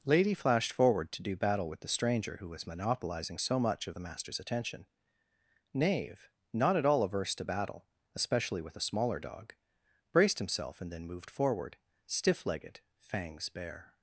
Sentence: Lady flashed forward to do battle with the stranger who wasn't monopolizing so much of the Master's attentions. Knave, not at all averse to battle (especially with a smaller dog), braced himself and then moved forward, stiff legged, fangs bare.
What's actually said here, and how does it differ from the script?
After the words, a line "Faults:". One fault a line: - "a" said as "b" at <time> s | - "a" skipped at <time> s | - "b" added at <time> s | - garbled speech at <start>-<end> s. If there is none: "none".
Lady flashed forward to do battle with the stranger who was monopolizing so much of the Master's attention. Knave, not at all averse to battle (especially with a smaller dog), braced himself and then moved forward, stiff legged, fangs bare.
Faults:
- "wasn't" said as "was" at 2.5 s
- "attentions" said as "attention" at 4.4 s